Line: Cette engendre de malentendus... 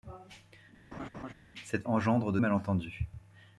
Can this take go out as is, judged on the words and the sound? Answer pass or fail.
fail